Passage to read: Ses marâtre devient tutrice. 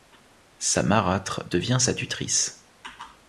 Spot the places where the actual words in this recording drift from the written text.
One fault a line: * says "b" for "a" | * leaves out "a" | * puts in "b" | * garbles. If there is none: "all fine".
* says "Sa" for "Ses"
* puts in "sa"